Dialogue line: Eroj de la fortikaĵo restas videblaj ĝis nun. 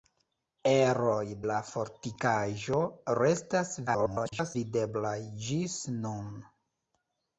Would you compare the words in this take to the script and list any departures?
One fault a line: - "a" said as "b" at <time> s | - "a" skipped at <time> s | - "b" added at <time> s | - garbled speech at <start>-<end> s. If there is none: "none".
- "de" skipped at 1.2 s
- garbled speech at 3.9-4.6 s